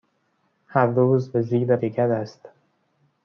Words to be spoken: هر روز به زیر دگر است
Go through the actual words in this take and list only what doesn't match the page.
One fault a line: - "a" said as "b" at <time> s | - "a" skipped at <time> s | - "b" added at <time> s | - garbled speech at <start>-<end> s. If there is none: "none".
none